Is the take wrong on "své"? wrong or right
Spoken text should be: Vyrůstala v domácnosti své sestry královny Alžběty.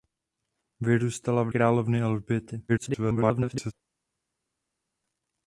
wrong